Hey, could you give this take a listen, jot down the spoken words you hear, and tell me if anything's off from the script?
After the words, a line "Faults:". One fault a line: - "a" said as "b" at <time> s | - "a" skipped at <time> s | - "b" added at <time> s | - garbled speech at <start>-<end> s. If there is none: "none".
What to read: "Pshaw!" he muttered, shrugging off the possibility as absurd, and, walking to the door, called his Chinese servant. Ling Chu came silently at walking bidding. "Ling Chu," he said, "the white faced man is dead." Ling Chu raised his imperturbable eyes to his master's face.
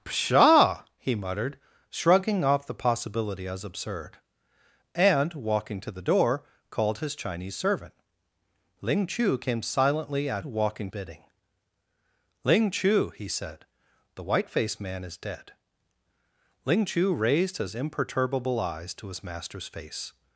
"Pshaw!" he muttered, shrugging off the possibility as absurd, and, walking to the door, called his Chinese servant. Ling Chu came silently at walking bidding. "Ling Chu," he said, "the white faced man is dead." Ling Chu raised his imperturbable eyes to his master's face.
Faults:
none